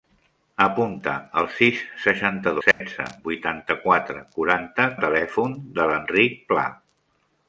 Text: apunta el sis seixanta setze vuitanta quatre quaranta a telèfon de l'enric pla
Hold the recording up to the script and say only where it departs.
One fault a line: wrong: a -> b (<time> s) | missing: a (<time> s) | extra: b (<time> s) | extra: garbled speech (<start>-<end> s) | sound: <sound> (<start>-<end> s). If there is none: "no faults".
sound: dropout (2.7-2.8 s)